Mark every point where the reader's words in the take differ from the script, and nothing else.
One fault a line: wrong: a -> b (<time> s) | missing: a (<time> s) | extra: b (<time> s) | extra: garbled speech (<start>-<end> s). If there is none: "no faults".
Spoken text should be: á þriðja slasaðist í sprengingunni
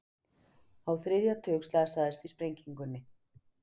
extra: tug (1.5 s)